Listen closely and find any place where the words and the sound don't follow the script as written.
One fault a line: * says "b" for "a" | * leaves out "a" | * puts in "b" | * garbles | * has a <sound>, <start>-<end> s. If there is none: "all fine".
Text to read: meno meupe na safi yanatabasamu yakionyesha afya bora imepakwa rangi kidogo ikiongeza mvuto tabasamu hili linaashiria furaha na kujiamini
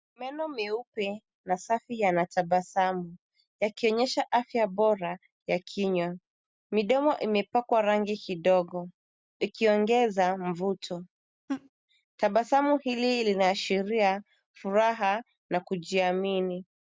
* puts in "ya kinywa midomo"
* has a laugh, 11.5-11.7 s